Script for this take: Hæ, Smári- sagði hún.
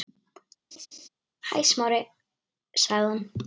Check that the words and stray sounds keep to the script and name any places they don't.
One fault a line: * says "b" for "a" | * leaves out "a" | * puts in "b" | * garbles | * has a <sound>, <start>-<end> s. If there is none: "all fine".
* has a laugh, 0.7-1.1 s